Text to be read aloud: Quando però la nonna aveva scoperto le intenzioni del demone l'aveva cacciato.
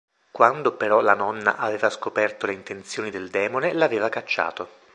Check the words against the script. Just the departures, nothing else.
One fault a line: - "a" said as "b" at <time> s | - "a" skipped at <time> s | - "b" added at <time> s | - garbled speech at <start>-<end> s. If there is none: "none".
none